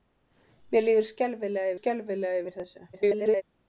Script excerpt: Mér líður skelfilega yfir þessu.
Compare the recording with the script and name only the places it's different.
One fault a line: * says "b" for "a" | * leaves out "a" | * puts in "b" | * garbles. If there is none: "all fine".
* puts in "skelfilega"
* garbles